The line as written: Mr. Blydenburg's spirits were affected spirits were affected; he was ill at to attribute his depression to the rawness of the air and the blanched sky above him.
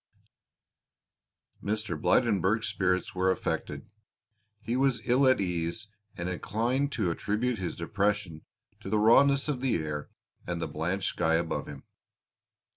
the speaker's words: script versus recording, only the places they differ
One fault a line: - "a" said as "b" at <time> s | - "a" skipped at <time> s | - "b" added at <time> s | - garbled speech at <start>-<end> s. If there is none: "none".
- "spirits were affected" skipped at 3.9 s
- "ease and inclined" added at 5.4 s